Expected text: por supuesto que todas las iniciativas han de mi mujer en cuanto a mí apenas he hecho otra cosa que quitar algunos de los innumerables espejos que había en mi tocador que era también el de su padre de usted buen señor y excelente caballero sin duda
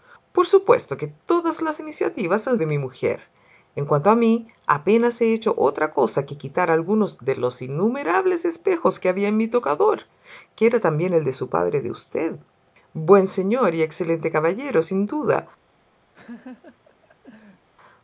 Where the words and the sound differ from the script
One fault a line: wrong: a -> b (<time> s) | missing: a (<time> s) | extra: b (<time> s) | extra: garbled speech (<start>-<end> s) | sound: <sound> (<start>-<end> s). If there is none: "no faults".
sound: laugh (16.1-17.7 s)